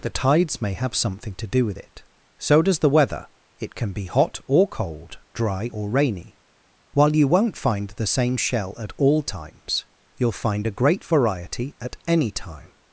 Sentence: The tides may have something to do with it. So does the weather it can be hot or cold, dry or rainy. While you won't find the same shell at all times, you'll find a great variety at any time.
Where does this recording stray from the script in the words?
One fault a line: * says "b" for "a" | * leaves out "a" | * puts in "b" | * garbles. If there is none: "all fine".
all fine